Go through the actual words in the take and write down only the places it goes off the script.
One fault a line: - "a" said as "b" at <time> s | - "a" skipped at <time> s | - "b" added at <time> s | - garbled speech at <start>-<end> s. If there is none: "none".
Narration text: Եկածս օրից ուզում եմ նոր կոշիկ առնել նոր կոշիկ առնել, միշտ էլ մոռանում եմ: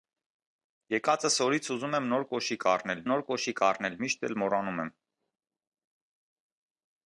none